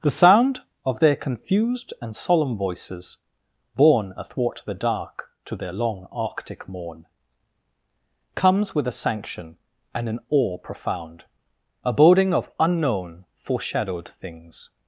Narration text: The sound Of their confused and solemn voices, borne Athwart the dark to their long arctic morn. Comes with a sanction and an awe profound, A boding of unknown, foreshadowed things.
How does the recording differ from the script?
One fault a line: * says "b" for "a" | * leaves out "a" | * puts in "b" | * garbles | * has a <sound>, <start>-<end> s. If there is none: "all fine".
all fine